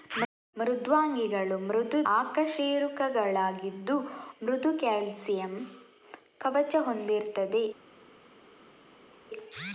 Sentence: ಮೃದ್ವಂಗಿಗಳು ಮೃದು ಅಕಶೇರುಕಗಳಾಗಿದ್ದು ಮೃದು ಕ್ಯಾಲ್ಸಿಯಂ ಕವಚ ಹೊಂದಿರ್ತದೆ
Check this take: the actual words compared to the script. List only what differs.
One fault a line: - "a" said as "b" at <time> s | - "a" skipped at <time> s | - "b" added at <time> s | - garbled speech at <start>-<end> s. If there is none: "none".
none